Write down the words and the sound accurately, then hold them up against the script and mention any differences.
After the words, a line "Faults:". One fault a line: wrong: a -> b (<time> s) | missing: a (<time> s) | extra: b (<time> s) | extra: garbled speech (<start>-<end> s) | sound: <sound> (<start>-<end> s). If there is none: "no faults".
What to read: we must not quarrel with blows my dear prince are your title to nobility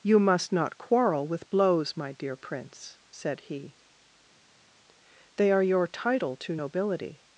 you must not quarrel with blows my dear prince said he they are your title to nobility
Faults:
wrong: we -> you (0.0 s)
extra: said he they (3.1 s)